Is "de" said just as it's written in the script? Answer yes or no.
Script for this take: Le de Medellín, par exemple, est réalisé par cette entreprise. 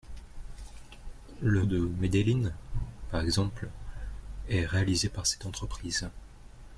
yes